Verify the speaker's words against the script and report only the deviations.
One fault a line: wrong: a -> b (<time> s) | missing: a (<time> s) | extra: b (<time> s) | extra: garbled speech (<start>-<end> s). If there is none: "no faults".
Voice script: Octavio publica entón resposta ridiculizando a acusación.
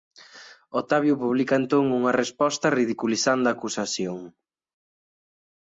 extra: unha (2.0 s)